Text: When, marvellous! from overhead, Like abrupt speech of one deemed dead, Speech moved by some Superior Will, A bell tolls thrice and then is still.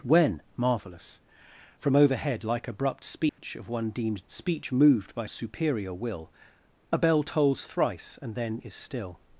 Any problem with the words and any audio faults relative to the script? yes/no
yes